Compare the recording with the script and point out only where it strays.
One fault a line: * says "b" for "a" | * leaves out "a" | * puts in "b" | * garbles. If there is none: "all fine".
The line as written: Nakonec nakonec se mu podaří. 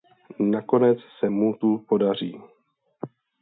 * leaves out "nakonec"
* puts in "tu"